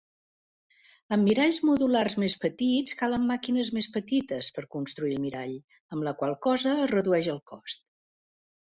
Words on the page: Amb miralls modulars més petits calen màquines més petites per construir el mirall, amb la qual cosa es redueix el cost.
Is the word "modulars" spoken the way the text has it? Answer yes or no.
yes